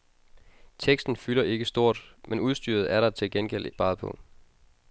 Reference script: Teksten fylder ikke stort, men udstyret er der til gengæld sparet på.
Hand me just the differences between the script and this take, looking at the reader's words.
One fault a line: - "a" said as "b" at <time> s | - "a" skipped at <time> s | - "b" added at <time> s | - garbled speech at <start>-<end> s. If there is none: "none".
none